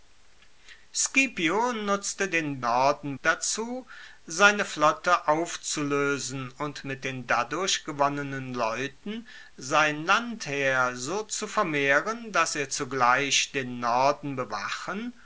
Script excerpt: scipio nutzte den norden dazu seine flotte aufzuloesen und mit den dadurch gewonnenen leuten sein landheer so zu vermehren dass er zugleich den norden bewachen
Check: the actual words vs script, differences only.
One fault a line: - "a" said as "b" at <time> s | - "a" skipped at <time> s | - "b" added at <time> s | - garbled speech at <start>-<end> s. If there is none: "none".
none